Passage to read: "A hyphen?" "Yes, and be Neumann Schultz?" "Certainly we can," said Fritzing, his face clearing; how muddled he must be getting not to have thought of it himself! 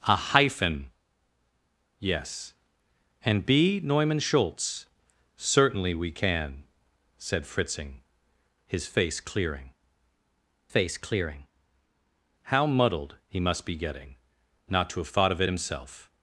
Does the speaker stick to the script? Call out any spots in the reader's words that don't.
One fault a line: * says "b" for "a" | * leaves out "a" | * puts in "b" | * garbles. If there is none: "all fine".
* puts in "face clearing"